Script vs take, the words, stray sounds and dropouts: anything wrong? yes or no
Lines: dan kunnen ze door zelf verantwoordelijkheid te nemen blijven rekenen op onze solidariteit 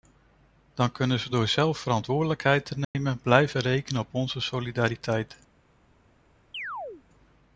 yes